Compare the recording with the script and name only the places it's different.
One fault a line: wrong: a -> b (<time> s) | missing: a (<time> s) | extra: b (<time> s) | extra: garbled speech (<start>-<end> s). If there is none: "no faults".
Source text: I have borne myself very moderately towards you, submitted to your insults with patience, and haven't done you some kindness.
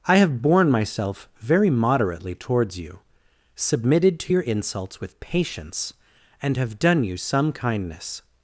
wrong: haven't -> have (6.6 s)